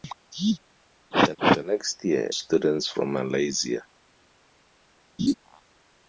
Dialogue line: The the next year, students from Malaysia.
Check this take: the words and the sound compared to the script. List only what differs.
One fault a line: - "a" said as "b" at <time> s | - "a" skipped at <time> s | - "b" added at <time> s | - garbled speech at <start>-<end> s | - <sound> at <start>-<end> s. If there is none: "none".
- laugh at 5.2-5.3 s